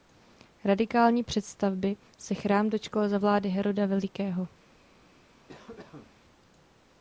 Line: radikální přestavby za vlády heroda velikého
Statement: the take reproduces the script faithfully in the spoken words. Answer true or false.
false